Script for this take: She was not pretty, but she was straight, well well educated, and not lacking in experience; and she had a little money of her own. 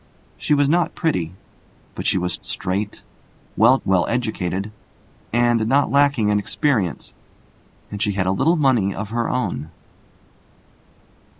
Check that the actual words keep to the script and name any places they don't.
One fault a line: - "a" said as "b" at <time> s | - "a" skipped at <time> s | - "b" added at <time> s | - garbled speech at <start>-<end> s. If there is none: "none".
none